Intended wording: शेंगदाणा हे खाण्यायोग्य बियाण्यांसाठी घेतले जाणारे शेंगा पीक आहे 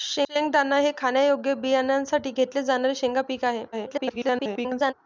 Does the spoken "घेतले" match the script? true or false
true